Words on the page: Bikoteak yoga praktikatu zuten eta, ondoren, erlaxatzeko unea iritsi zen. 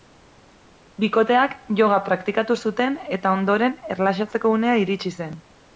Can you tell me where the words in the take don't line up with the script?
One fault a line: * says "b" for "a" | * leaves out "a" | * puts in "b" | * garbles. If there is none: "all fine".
all fine